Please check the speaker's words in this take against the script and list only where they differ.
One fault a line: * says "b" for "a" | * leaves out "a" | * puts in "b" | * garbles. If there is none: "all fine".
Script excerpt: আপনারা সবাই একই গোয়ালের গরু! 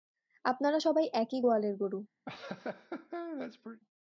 all fine